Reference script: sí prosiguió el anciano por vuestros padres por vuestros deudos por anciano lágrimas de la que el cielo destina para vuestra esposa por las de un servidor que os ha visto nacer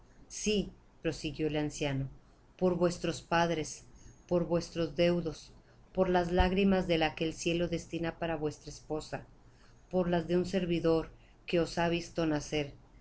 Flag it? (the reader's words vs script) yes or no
yes